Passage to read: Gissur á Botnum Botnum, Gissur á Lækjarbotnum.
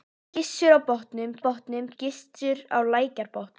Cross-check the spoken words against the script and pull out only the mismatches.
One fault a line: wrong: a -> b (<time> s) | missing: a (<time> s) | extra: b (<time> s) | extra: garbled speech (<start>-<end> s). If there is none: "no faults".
no faults